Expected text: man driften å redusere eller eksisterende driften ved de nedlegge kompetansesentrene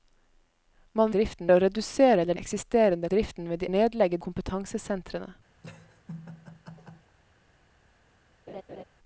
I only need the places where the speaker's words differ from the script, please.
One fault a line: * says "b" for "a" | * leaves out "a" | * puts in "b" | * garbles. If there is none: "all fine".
all fine